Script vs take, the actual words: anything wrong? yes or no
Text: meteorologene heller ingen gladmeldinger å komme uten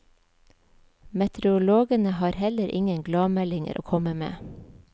yes